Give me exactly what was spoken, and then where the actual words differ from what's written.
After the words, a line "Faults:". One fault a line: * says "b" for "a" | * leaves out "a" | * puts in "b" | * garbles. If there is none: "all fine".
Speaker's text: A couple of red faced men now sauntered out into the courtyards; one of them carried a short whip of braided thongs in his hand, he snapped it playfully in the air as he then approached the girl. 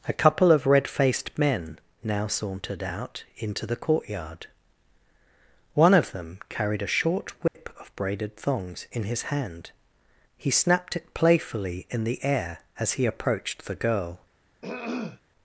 A couple of red faced men now sauntered out into the courtyard; one of them carried a short whip of braided thongs in his hand, he snapped it playfully in the air as he approached the girl.
Faults:
* says "courtyard" for "courtyards"
* leaves out "then"